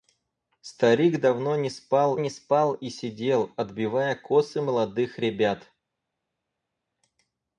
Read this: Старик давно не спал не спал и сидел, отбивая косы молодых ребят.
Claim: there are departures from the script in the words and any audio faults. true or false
false